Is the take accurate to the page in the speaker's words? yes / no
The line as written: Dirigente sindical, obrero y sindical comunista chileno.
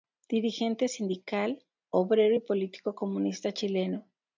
no